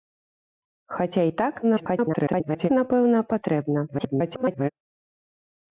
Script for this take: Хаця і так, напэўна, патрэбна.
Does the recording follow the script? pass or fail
fail